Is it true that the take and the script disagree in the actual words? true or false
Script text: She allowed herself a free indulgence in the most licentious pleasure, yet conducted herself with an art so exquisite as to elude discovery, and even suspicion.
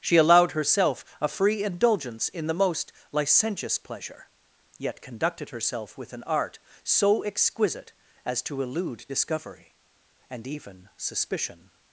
false